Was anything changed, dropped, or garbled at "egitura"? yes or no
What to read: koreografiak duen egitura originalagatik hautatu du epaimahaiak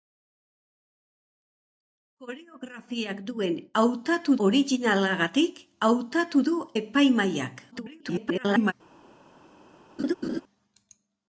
yes